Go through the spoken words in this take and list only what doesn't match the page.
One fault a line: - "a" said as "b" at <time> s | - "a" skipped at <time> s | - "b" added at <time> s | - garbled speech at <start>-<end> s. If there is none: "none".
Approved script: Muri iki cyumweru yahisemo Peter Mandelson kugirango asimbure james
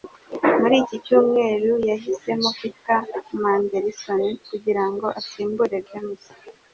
none